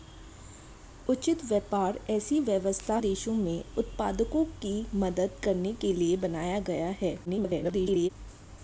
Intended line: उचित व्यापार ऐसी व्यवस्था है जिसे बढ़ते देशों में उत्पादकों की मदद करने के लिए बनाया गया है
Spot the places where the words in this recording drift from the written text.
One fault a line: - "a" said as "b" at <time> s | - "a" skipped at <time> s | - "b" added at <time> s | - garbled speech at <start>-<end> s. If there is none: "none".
- "है जिसे बढ़ते" skipped at 3.0 s
- garbled speech at 7.3-8.1 s